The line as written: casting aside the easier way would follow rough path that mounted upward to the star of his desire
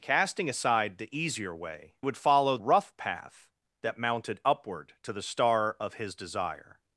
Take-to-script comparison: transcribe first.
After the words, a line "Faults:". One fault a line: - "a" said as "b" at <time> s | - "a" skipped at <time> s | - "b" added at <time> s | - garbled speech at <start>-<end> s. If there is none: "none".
casting aside the easier way would follow rough path that mounted upward to the star of his desire
Faults:
none